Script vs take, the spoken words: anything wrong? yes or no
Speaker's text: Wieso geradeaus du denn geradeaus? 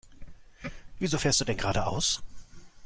yes